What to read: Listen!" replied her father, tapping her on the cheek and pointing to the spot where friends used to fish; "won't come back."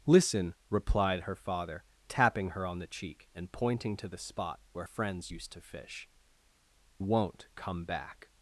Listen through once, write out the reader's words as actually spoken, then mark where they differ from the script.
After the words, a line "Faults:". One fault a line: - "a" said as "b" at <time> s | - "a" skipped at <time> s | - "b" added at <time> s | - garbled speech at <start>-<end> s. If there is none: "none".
Listen!" replied her father, tapping her on the cheek and pointing to the spot where friends used to fish; "won't come back."
Faults:
none